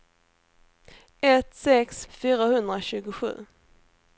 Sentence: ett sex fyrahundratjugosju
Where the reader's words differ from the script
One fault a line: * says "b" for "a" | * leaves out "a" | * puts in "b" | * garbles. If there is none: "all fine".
all fine